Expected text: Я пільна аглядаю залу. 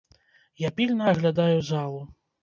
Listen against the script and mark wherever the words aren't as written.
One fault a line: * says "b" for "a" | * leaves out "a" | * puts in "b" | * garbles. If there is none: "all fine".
all fine